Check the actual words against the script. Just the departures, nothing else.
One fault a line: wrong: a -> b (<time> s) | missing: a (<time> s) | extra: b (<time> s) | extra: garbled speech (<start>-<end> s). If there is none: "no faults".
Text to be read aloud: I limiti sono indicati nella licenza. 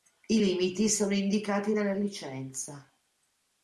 no faults